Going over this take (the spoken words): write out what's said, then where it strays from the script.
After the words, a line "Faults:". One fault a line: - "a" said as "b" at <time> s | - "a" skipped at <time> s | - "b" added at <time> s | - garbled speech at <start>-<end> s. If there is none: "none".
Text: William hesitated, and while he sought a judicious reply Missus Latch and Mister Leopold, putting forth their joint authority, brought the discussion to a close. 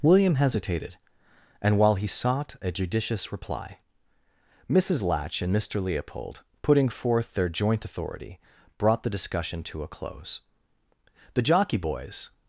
William hesitated, and while he sought a judicious reply Missus Latch and Mister Leopold, putting forth their joint authority, brought the discussion to a close. The jockey boys
Faults:
- "The jockey boys" added at 11.3 s